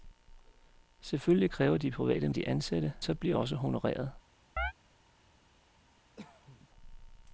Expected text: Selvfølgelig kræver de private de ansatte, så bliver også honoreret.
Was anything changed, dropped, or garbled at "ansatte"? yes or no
no